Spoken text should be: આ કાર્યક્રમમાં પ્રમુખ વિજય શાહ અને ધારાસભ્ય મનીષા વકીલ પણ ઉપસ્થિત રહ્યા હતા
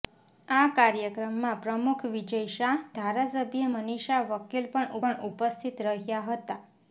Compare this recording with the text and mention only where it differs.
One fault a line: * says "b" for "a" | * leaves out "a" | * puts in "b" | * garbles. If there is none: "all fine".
* leaves out "અને"
* puts in "પણ"